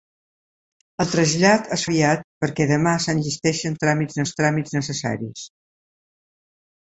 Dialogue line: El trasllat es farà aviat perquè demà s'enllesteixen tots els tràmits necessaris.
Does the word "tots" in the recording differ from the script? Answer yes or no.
yes